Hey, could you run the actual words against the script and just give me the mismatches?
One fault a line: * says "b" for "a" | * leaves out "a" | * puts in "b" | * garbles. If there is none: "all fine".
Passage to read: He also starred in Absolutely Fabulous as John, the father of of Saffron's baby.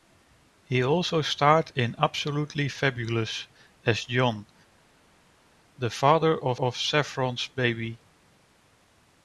all fine